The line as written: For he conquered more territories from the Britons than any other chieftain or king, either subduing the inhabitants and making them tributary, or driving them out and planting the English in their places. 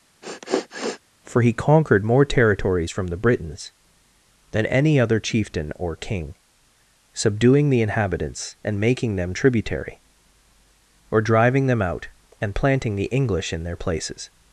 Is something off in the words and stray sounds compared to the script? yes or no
yes